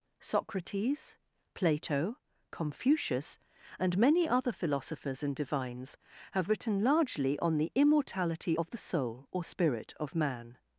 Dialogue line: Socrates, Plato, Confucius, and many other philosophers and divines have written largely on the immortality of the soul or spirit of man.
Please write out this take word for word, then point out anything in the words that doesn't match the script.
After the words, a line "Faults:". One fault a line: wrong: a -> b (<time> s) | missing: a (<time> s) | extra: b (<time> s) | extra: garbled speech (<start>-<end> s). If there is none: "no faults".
Socrates, Plato, Confucius, and many other philosophers and divines have written largely on the immortality of the soul or spirit of man.
Faults:
no faults